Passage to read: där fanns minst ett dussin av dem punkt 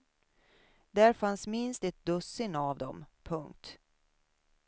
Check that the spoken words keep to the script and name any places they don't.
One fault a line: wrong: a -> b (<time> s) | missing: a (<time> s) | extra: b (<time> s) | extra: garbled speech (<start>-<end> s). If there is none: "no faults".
no faults